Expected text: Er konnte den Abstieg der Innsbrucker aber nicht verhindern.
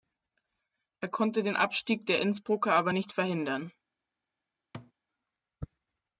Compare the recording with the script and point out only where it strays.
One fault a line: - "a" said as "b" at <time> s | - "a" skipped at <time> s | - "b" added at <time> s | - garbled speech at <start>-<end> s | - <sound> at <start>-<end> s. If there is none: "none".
- thud at 4.7-4.9 s